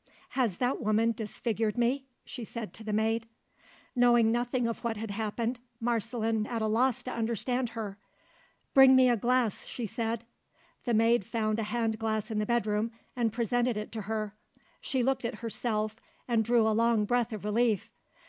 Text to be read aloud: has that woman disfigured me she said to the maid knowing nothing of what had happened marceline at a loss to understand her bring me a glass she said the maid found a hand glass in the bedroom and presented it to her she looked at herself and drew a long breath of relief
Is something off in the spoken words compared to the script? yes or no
no